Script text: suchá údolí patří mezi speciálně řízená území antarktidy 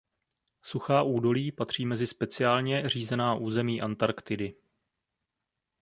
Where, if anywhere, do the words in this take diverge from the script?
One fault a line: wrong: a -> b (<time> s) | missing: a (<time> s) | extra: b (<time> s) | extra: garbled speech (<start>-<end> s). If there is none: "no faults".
no faults